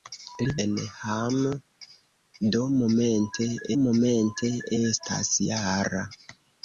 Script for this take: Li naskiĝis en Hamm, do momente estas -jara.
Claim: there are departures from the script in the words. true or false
true